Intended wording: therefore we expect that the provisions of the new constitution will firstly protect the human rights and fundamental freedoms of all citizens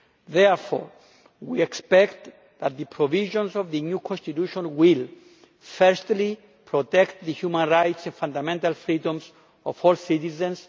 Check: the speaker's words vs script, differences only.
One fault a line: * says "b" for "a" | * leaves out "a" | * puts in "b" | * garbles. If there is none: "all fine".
all fine